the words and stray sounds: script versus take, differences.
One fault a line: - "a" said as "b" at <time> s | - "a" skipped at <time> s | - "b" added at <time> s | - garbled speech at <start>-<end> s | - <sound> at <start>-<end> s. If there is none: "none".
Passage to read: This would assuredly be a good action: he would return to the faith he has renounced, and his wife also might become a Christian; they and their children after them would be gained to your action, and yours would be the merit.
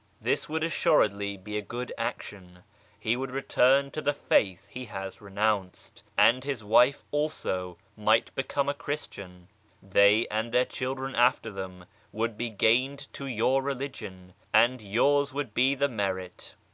- "action" said as "religion" at 13.6 s